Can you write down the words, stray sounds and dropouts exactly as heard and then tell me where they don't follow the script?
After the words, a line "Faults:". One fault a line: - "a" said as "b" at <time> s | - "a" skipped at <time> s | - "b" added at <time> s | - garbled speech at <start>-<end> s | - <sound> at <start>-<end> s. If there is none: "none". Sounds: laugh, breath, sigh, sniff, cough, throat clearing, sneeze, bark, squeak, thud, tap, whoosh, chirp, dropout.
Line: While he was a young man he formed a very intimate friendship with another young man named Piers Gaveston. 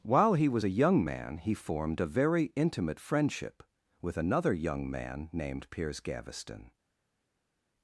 While he was a young man he formed a very intimate friendship with another young man named Piers Gaveston.
Faults:
none